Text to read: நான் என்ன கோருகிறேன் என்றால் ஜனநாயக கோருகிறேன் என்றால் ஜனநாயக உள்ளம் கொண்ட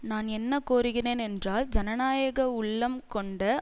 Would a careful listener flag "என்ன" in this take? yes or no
no